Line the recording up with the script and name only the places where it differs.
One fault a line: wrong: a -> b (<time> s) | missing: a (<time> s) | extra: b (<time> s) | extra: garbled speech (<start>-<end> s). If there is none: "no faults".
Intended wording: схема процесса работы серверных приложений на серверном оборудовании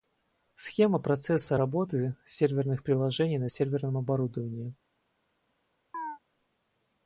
no faults